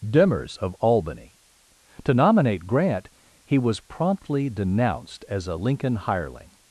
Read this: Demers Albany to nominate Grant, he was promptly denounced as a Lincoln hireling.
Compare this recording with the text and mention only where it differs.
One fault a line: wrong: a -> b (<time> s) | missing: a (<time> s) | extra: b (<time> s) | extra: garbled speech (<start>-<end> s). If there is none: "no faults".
extra: of (0.6 s)